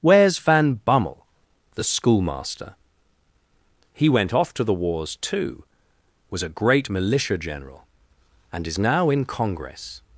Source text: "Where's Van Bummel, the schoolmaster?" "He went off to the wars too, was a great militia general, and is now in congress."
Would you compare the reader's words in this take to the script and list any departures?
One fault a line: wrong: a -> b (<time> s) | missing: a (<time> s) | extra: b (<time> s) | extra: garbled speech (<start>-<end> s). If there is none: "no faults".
no faults